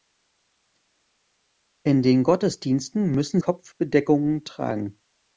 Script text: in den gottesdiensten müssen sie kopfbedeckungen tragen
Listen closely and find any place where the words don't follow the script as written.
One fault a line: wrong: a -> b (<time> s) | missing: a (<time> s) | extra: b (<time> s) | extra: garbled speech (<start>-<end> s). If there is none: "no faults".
missing: sie (3.4 s)